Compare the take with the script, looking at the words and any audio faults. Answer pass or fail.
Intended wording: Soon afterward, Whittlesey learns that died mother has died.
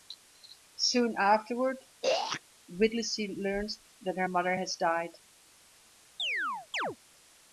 fail